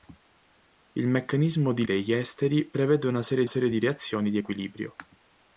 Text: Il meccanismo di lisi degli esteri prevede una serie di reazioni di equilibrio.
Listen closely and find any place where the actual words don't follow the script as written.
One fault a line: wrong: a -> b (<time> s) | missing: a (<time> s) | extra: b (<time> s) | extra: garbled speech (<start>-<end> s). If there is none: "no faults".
missing: lisi (1.9 s)
extra: serie (3.5 s)